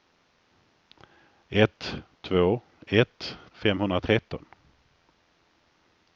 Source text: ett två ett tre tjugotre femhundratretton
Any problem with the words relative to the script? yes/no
yes